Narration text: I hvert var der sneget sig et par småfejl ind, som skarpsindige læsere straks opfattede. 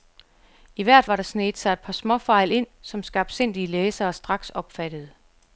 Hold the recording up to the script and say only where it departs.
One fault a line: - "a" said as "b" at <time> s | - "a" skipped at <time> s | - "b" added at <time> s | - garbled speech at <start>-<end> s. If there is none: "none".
none